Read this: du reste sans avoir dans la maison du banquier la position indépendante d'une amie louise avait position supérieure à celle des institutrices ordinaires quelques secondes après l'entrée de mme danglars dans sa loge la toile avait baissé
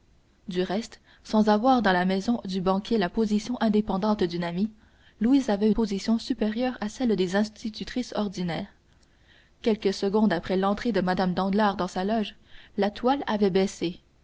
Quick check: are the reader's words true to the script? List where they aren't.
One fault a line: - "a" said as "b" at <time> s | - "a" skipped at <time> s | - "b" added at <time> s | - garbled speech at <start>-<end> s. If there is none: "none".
none